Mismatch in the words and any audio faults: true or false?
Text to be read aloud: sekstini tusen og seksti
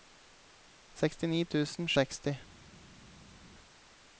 false